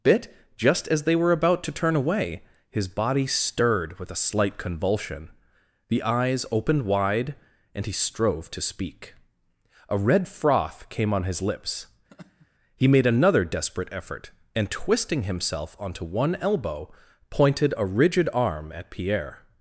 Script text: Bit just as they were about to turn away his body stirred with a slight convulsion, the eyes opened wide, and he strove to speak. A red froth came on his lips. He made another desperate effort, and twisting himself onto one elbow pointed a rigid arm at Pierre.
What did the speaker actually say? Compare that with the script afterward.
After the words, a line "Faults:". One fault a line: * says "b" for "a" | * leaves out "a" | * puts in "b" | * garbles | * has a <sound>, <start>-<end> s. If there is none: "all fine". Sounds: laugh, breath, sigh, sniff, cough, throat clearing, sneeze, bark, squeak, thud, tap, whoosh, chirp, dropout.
Bit just as they were about to turn away his body stirred with a slight convulsion, the eyes opened wide, and he strove to speak. A red froth came on his lips. He made another desperate effort, and twisting himself onto one elbow pointed a rigid arm at Pierre.
Faults:
* has a laugh, 12.1-12.5 s